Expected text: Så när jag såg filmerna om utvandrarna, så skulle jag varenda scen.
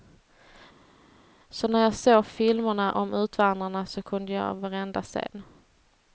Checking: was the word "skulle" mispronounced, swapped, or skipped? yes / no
yes